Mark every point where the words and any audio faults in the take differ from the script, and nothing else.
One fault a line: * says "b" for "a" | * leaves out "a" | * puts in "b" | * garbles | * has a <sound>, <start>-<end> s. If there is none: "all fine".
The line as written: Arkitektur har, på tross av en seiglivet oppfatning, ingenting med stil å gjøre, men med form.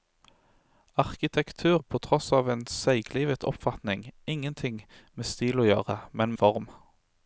* leaves out "har"
* leaves out "med"